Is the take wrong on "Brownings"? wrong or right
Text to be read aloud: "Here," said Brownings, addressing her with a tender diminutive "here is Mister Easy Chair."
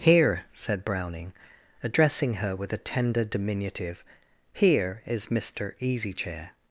wrong